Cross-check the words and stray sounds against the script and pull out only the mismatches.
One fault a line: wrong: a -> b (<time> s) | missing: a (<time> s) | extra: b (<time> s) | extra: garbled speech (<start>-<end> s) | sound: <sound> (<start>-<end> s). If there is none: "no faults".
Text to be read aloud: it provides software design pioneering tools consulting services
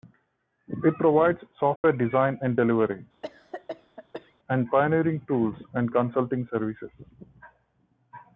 sound: dropout (1.8-1.8 s)
extra: and delivery and (2.4 s)
sound: cough (3.2-4.4 s)
extra: and (5.7 s)